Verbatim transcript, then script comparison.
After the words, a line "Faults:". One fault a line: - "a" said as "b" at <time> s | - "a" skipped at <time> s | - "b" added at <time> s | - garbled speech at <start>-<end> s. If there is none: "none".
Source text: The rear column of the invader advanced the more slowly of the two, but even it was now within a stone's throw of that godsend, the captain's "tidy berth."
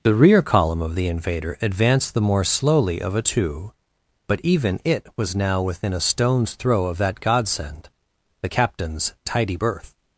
The rear column of the invader advanced the more slowly of a two, but even it was now within a stone's throw of that godsend, the captain's "tidy berth."
Faults:
- "the" said as "a" at 3.1 s